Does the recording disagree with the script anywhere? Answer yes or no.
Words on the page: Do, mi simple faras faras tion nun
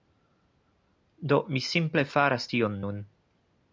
yes